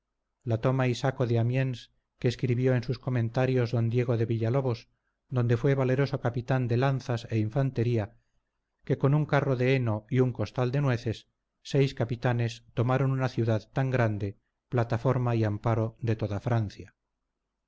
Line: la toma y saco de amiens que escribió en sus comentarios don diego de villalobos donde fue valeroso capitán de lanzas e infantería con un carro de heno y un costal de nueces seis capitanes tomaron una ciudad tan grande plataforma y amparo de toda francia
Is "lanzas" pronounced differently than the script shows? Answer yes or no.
no